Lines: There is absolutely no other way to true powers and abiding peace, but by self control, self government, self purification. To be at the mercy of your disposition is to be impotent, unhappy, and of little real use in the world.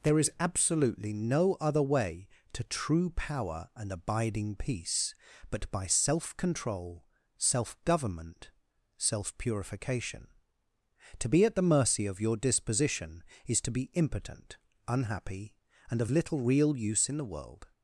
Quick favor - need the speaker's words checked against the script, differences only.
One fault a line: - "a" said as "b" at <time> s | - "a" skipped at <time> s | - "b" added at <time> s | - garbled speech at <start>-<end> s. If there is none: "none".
- "powers" said as "power" at 3.1 s